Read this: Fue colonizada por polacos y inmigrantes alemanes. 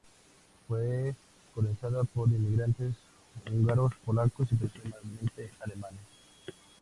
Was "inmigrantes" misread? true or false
true